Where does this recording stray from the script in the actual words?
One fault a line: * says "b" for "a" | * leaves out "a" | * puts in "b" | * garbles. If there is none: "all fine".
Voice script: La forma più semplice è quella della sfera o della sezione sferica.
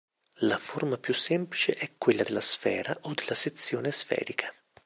all fine